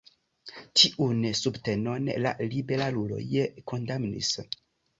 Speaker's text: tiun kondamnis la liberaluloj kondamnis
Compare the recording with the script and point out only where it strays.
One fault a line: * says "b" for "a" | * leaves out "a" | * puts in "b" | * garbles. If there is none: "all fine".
* says "subtenon" for "kondamnis"